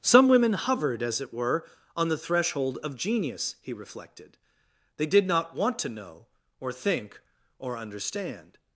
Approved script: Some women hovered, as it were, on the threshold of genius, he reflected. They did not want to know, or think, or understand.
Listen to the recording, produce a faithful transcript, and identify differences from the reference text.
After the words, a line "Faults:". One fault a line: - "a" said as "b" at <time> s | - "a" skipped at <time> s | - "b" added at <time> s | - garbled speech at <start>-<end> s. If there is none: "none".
Some women hovered, as it were, on the threshold of genius, he reflected. They did not want to know, or think, or understand.
Faults:
none